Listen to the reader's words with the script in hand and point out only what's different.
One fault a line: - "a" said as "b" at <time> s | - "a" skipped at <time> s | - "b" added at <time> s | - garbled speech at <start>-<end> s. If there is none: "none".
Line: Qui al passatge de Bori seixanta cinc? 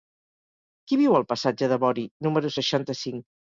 - "viu" added at 1.0 s
- "número" added at 2.3 s